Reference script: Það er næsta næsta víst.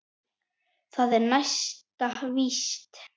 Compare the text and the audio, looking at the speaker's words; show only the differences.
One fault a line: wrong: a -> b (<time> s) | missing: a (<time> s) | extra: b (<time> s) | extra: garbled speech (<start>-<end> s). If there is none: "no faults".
missing: næsta (2.1 s)